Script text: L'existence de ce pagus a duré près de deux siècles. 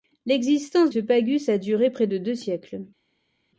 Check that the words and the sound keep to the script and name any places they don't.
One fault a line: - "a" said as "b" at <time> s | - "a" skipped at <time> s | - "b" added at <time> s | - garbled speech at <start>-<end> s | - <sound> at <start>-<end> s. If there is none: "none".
- "de" skipped at 0.9 s